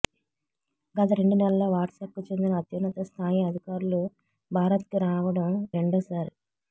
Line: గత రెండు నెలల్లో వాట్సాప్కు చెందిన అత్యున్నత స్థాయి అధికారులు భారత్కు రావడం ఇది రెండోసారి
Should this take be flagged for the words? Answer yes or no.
yes